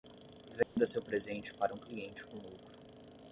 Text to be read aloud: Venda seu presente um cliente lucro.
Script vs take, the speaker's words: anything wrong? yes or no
yes